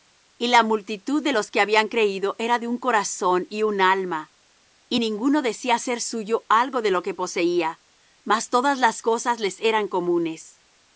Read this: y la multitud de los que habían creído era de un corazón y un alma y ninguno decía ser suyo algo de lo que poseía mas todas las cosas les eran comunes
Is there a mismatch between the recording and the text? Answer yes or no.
no